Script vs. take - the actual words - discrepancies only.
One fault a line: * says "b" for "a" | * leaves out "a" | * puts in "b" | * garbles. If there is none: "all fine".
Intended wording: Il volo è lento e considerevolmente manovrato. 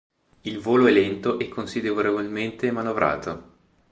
all fine